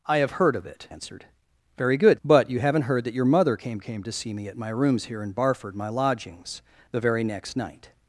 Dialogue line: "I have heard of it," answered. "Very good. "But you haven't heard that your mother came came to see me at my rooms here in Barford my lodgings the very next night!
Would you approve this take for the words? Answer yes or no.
yes